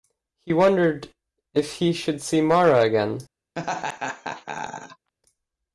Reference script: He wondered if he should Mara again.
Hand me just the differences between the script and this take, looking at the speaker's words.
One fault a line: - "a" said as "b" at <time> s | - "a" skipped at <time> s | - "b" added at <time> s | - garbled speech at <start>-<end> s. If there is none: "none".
- "see" added at 2.2 s